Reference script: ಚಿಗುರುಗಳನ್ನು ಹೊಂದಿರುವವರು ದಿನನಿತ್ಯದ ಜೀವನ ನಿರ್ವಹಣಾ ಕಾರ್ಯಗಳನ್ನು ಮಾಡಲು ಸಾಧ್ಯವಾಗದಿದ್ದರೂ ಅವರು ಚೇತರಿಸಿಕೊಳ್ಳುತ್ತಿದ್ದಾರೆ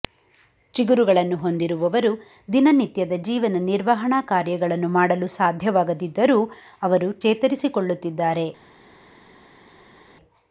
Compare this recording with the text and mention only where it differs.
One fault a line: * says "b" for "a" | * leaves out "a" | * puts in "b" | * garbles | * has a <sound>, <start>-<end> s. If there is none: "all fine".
all fine